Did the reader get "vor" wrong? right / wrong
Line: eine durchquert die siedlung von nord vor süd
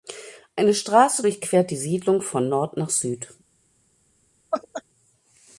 wrong